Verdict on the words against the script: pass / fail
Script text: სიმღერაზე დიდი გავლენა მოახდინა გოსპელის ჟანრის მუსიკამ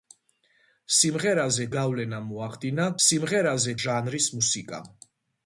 fail